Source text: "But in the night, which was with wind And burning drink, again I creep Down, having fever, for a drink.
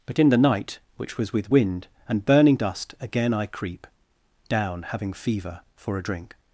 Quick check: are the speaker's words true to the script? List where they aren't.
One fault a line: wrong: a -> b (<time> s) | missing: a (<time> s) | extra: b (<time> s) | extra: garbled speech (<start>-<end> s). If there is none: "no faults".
wrong: drink -> dust (2.5 s)